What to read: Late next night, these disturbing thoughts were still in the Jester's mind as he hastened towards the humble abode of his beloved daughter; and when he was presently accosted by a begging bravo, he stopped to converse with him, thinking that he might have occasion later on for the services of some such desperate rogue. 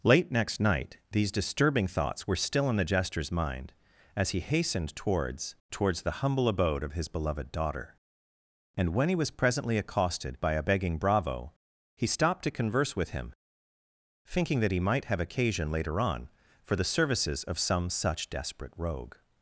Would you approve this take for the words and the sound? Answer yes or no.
no